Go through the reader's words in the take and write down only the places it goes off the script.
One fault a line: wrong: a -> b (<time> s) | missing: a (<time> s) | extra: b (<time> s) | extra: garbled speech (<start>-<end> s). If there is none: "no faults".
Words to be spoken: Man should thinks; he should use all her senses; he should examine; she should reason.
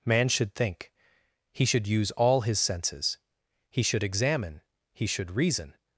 wrong: thinks -> think (0.6 s)
wrong: her -> his (2.4 s)
wrong: she -> he (4.9 s)